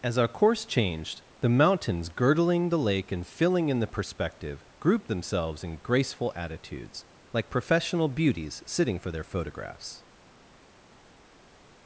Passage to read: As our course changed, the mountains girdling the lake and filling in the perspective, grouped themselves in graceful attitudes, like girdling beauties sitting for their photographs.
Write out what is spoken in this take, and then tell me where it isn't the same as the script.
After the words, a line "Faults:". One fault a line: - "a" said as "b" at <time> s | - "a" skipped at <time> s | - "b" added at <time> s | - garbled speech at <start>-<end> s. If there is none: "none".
As our course changed, the mountains girdling the lake and filling in the perspective, grouped themselves in graceful attitudes, like professional beauties sitting for their photographs.
Faults:
- "girdling" said as "professional" at 7.5 s